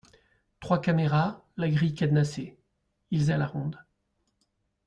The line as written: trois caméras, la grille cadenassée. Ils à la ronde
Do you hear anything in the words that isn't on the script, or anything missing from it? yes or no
no